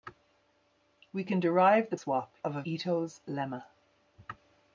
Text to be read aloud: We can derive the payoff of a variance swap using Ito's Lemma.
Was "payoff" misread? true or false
true